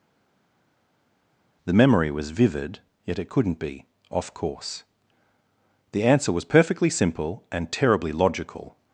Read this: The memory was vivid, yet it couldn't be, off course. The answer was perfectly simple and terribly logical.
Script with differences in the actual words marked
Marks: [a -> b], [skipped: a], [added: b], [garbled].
The memory was vivid, yet it couldn't be, off course. The answer was perfectly simple and terribly logical.